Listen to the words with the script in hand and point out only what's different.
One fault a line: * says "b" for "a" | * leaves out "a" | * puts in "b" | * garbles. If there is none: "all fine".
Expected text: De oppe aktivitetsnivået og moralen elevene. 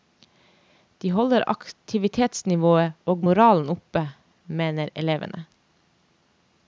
* says "holder" for "oppe"
* puts in "oppe mener"